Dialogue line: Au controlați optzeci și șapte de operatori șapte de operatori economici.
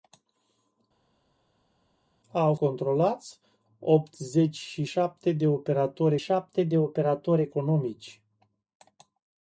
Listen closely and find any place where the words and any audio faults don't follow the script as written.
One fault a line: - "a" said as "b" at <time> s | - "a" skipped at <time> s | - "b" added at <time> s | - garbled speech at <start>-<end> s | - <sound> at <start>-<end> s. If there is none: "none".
none